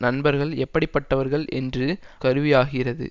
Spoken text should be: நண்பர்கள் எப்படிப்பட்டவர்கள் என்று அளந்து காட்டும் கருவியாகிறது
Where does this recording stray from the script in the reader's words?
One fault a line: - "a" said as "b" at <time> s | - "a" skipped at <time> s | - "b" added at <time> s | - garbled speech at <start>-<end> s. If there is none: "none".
- "அளந்து காட்டும்" skipped at 1.9 s